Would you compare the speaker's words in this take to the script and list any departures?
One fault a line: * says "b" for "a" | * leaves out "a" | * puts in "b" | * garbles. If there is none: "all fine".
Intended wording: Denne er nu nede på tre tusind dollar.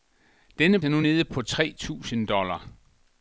all fine